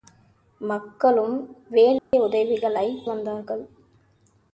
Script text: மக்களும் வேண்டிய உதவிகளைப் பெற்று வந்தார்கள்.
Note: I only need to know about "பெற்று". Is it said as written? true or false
false